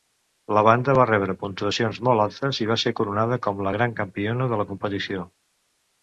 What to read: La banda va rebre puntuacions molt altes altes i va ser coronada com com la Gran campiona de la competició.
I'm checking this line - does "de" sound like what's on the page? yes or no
yes